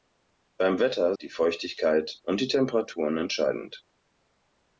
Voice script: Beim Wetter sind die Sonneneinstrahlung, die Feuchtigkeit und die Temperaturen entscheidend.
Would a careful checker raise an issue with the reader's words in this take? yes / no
yes